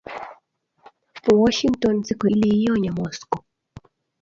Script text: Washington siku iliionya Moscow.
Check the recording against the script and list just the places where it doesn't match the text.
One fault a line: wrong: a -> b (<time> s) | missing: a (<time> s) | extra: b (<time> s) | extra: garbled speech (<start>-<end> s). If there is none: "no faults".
no faults